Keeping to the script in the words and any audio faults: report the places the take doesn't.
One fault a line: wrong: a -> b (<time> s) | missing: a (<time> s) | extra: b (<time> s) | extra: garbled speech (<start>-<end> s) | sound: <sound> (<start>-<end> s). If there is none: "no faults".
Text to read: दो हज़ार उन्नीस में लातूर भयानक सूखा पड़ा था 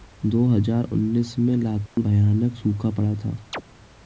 sound: dropout (1.9-2.0 s)
sound: chirp (3.5-3.6 s)